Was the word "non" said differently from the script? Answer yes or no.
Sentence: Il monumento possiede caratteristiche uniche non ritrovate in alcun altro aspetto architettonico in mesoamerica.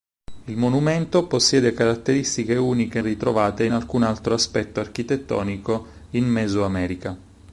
yes